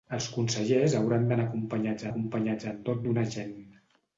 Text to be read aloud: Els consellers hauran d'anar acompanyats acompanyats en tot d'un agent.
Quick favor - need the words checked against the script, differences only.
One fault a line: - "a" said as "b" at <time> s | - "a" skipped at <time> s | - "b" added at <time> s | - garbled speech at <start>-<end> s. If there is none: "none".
none